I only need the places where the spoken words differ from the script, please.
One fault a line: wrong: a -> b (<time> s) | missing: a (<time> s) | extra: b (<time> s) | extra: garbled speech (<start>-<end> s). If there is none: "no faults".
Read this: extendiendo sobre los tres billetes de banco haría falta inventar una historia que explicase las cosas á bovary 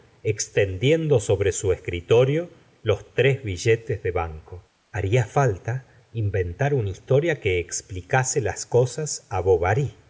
extra: su escritorio (1.5 s)